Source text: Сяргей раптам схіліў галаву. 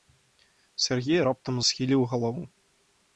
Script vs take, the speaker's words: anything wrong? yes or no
no